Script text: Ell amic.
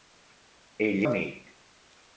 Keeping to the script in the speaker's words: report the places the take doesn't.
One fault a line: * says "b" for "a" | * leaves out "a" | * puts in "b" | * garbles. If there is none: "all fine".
all fine